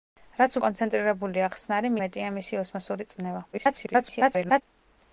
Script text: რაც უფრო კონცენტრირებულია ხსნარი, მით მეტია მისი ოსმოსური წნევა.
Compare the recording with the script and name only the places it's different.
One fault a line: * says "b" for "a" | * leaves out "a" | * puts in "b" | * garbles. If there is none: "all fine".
* leaves out "უფრო"
* leaves out "მით"
* garbles